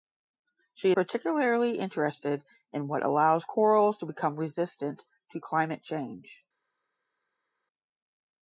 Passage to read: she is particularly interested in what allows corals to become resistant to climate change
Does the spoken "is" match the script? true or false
false